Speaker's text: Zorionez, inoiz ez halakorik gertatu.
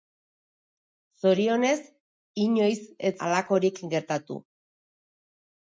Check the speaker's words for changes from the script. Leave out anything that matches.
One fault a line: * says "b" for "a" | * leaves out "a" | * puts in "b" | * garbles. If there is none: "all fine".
all fine